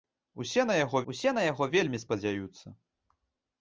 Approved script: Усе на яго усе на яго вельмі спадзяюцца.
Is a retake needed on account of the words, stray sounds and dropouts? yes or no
no